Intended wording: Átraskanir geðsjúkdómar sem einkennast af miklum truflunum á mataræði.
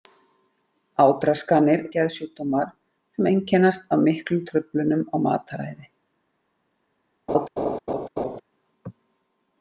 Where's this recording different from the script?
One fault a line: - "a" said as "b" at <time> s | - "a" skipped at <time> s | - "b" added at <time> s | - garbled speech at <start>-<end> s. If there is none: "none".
none